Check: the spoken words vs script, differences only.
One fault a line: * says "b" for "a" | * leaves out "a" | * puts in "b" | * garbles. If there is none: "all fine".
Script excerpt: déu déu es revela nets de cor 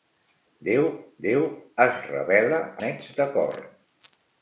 all fine